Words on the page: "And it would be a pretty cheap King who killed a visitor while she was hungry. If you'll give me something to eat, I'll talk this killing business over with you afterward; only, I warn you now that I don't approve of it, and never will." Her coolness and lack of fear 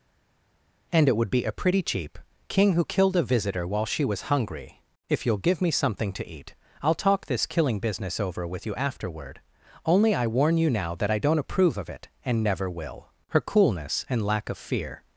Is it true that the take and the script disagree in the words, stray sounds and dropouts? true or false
false